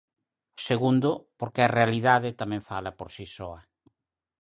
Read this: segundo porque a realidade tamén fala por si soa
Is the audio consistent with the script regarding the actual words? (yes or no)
yes